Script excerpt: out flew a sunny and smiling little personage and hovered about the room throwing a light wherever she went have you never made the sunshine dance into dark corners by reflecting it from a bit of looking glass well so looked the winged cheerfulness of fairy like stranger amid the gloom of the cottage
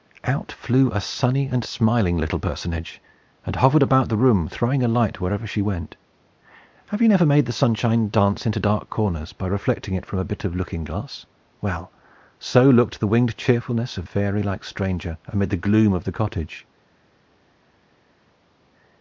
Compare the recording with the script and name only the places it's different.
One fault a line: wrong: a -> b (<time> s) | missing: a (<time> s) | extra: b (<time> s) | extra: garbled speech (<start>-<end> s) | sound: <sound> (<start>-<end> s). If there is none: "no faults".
no faults